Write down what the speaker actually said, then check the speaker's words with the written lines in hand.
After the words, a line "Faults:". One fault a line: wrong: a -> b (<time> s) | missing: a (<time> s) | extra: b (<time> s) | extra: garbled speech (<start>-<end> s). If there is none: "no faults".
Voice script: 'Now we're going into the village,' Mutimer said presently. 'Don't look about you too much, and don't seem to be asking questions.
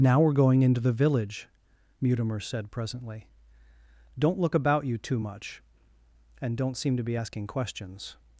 'Now we're going into the village,' Mutimer said presently. 'Don't look about you too much, and don't seem to be asking questions.
Faults:
no faults